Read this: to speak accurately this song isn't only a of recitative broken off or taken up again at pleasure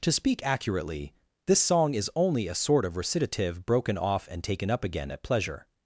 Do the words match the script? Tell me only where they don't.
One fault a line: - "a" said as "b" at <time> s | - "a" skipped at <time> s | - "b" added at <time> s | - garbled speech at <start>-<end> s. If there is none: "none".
- "isn't" said as "is" at 1.9 s
- "sort" added at 2.5 s
- "or" said as "and" at 4.3 s